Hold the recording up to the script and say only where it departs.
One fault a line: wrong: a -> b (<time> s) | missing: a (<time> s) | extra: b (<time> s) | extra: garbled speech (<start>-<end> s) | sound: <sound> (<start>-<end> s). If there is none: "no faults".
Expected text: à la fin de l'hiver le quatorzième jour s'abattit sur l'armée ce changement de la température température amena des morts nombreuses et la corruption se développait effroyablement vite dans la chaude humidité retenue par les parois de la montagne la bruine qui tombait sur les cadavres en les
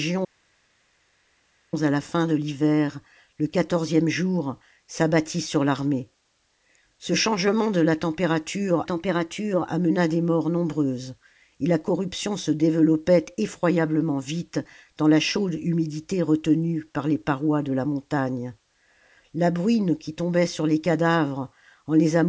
no faults